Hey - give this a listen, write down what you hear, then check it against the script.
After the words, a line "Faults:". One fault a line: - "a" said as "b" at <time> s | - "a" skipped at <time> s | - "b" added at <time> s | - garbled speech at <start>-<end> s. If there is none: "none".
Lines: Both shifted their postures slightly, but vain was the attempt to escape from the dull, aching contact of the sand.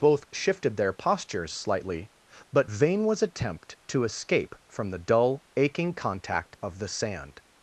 Both shifted their postures slightly, but vain was attempt to escape from the dull, aching contact of the sand.
Faults:
- "the" skipped at 3.2 s